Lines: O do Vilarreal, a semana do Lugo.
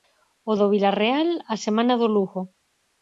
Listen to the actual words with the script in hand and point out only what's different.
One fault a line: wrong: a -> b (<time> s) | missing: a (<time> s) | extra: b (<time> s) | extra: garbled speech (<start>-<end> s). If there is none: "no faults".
no faults